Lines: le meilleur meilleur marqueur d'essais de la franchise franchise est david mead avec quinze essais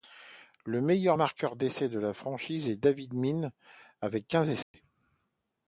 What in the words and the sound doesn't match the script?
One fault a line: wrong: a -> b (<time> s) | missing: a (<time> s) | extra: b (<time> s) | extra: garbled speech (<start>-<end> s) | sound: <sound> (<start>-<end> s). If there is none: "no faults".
missing: meilleur (1.2 s)
missing: franchise (2.7 s)
sound: dropout (4.6-4.7 s)